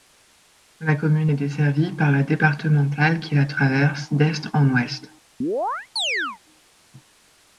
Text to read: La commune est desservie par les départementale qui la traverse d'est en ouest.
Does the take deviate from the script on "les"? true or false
true